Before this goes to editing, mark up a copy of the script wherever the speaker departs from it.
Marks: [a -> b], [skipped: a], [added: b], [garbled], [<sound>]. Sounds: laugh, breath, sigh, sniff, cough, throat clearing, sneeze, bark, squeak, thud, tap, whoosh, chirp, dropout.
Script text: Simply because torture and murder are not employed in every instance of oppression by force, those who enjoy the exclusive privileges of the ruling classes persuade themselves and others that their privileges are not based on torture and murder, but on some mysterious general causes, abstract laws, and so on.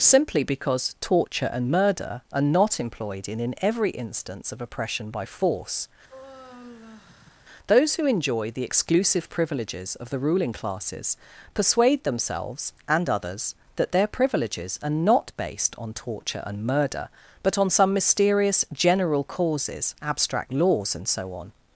Simply because torture and murder are not employed in [added: in] every instance of oppression by force, [sigh] those who enjoy the exclusive privileges of the ruling classes persuade themselves and others that their privileges are not based on torture and murder, but on some mysterious general causes, abstract laws, and so on.